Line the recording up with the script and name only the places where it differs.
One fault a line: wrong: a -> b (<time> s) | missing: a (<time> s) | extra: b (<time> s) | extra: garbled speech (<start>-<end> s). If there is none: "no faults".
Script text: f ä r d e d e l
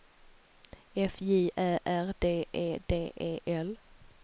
extra: j (1.2 s)